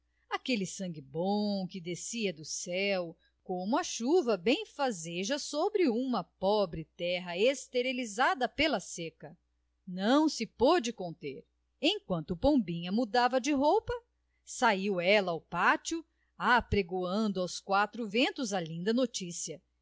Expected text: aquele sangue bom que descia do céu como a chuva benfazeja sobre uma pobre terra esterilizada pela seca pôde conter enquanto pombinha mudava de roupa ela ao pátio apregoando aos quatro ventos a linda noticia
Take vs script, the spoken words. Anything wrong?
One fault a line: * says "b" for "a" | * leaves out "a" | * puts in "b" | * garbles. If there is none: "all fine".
* puts in "não se"
* puts in "saiu"